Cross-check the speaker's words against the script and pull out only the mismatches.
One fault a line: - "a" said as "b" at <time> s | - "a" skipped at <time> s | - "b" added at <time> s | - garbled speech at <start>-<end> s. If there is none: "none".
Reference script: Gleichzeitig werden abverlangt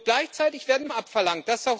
none